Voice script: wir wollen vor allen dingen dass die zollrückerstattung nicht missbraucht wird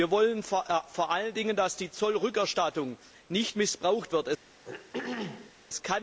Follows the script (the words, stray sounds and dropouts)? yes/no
no